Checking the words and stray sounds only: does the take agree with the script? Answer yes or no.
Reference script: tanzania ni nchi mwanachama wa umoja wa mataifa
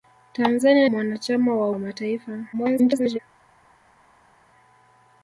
no